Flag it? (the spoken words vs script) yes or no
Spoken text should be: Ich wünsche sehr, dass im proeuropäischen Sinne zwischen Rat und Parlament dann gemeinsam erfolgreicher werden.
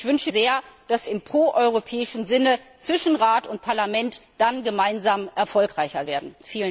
no